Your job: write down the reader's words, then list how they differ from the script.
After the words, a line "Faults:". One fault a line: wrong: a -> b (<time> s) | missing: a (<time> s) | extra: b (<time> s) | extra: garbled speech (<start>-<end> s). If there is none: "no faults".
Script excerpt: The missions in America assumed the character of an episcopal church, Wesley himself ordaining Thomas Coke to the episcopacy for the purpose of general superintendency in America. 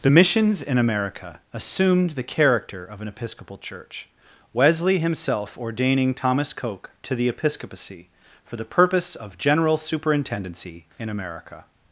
The missions in America assumed the character of an episcopal church, Wesley himself ordaining Thomas Coke to the episcopacy for the purpose of general superintendency in America.
Faults:
no faults